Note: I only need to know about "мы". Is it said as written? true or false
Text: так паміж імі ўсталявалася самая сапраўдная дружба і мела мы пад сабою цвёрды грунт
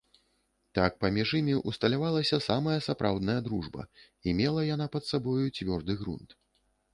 false